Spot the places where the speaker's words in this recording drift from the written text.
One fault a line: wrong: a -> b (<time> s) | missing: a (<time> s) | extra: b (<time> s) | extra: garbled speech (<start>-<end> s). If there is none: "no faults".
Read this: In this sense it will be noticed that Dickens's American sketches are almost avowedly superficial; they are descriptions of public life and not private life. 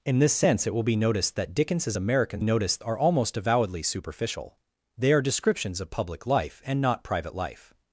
wrong: sketches -> noticed (2.4 s)